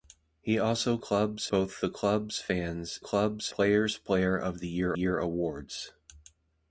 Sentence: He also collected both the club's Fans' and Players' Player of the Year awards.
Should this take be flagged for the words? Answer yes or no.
yes